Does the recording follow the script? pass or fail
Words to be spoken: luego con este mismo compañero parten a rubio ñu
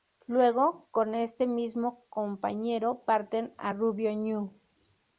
pass